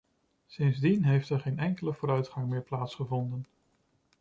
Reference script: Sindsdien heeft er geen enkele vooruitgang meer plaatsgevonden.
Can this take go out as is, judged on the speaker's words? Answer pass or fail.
pass